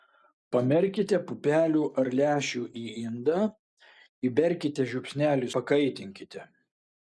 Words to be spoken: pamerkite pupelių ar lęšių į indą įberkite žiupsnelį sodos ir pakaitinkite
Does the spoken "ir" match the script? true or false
false